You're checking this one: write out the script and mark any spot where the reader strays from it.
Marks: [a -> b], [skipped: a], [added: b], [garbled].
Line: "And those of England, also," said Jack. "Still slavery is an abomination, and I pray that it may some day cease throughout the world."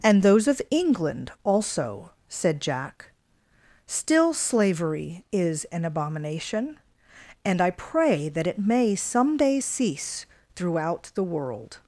"And those of England, also," said Jack. "Still slavery is an abomination, and I pray that it may some day cease throughout the world."